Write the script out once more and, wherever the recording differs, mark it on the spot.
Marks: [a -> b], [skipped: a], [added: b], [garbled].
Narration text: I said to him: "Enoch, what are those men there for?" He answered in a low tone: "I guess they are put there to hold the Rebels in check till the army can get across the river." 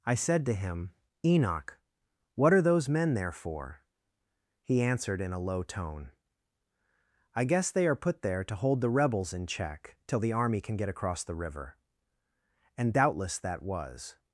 I said to him: "Enoch, what are those men there for?" He answered in a low tone: "I guess they are put there to hold the Rebels in check till the army can get across the river." [added: And doubtless that was]